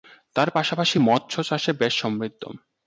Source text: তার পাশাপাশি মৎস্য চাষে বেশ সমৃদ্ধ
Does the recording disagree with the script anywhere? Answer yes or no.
no